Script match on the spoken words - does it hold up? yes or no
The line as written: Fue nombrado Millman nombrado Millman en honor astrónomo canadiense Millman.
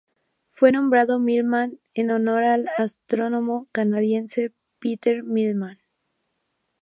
no